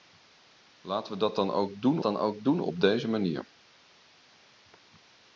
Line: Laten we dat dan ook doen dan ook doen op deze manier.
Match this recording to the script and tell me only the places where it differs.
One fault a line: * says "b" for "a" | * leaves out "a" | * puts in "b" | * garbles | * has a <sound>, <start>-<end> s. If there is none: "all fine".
all fine